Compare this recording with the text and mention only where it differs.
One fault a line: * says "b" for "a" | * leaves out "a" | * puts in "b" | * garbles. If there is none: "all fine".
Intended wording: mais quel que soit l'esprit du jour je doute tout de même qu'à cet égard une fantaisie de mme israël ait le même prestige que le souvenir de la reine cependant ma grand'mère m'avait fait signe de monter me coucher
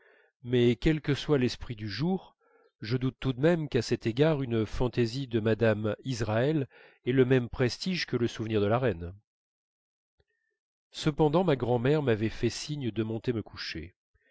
all fine